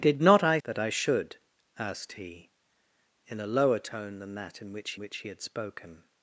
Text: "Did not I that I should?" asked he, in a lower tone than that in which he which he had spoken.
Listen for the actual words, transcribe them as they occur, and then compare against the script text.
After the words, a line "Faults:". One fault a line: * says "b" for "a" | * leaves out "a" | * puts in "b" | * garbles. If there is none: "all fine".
"Did not I that I should?" asked he, in a lower tone than that in which he which he had spoken.
Faults:
all fine